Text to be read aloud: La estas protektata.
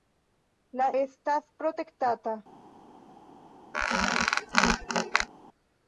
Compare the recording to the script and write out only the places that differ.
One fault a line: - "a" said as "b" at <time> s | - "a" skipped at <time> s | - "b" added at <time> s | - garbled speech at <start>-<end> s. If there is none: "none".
none